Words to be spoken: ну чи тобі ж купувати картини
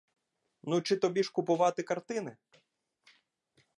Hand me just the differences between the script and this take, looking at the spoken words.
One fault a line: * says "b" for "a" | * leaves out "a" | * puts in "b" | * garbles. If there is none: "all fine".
all fine